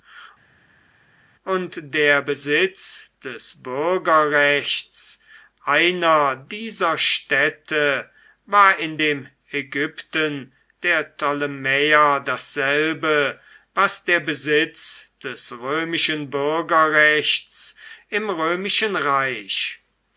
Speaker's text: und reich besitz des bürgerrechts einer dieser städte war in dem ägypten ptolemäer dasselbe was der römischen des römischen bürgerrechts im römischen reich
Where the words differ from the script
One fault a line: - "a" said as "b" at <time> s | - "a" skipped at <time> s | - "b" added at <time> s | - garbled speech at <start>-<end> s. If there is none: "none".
- "reich" said as "der" at 1.9 s
- "der" added at 10.8 s
- "römischen" said as "besitz" at 14.2 s